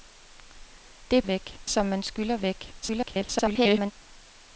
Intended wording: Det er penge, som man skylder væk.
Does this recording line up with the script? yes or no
no